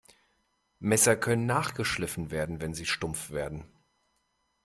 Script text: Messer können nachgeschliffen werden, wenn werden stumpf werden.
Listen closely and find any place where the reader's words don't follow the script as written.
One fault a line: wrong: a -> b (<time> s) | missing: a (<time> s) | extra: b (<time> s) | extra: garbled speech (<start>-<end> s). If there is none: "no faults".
wrong: werden -> sie (2.7 s)